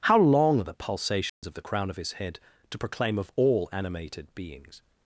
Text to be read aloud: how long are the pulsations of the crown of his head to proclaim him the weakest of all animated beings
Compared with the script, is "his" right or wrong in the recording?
right